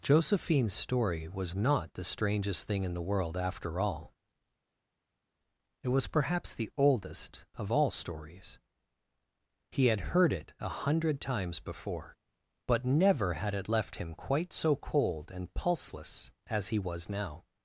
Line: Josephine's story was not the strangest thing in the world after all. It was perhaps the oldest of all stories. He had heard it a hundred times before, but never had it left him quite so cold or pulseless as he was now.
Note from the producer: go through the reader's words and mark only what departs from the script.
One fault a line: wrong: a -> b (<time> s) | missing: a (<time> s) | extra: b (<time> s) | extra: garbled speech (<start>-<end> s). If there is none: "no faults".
wrong: or -> and (15.3 s)